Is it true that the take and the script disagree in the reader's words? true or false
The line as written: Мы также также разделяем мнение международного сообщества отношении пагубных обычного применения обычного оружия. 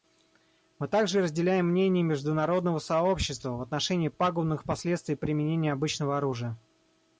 true